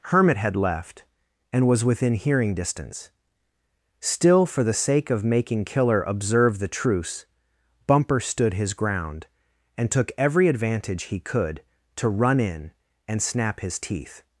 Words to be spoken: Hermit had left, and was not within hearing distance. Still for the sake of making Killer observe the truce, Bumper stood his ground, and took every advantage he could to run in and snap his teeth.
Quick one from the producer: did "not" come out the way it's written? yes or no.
no